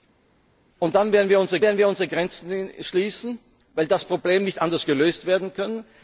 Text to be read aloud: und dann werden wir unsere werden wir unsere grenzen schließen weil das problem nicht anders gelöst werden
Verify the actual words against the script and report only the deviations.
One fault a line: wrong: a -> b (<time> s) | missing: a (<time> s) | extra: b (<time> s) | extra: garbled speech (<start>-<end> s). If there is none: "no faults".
no faults